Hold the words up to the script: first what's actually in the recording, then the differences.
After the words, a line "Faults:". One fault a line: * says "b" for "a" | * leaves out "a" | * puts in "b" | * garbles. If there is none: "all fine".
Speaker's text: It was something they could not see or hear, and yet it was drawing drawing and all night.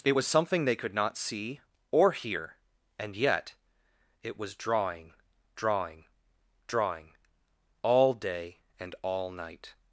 It was something they could not see or hear, and yet it was drawing drawing drawing all day and all night.
Faults:
* puts in "drawing all day"